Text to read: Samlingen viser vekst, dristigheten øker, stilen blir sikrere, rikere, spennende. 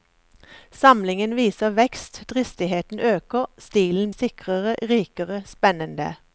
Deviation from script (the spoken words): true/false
true